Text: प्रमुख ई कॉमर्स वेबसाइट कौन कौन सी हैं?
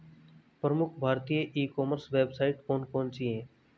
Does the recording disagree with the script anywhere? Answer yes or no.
yes